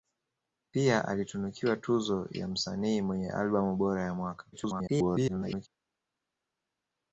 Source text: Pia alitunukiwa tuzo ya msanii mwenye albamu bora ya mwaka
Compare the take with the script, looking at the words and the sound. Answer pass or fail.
fail